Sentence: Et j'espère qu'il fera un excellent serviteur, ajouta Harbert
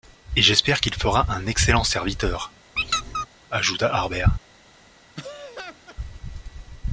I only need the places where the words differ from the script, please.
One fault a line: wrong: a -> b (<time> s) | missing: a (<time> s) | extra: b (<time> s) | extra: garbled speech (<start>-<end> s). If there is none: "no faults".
no faults